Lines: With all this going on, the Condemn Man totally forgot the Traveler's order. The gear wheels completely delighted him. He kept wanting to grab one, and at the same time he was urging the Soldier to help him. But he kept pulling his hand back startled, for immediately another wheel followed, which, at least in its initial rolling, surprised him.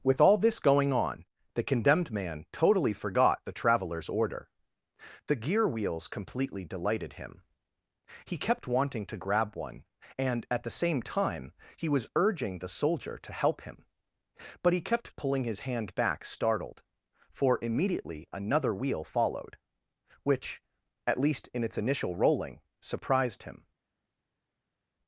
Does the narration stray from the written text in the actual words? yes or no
yes